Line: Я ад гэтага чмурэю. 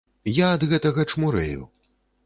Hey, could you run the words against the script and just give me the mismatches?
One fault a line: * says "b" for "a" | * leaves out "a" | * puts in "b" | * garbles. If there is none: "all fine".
all fine